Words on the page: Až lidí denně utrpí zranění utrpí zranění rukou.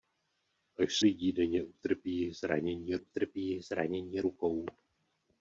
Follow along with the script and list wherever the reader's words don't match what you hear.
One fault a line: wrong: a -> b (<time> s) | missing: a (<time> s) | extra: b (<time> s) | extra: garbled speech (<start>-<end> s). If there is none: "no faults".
no faults